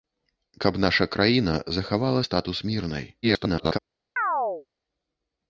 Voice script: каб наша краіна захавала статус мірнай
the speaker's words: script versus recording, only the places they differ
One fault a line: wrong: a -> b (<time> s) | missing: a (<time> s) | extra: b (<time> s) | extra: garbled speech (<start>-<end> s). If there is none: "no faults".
extra: garbled speech (3.2-3.8 s)